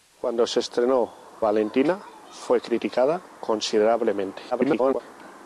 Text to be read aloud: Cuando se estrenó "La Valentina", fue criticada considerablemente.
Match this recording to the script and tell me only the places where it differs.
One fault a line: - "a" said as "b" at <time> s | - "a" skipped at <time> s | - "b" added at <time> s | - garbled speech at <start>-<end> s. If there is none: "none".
- "La" skipped at 1.4 s
- garbled speech at 4.5-5.0 s